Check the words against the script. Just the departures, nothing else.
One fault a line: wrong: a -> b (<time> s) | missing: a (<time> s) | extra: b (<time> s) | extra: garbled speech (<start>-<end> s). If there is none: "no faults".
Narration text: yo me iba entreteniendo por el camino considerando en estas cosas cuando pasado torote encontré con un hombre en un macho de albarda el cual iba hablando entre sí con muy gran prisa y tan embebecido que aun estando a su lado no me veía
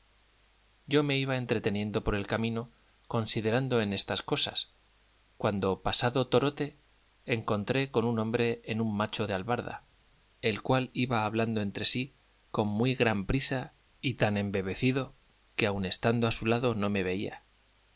no faults